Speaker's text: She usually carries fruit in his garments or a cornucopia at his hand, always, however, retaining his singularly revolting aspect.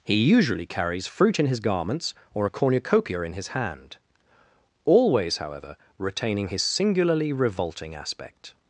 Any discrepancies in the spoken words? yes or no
yes